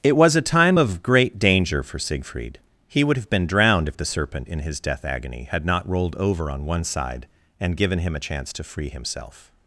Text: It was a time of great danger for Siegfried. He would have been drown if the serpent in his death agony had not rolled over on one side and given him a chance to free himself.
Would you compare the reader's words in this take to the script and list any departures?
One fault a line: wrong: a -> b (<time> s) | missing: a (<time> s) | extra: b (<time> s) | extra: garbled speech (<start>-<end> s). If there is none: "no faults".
wrong: drown -> drowned (3.5 s)